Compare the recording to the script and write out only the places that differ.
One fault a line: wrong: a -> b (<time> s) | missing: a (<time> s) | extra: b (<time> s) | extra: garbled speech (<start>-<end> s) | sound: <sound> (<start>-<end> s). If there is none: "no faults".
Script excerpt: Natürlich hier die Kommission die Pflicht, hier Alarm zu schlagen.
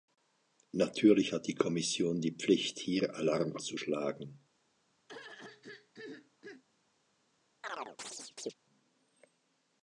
wrong: hier -> hat (1.3 s)
sound: throat clearing (5.1-6.6 s)
sound: chirp (7.6-8.5 s)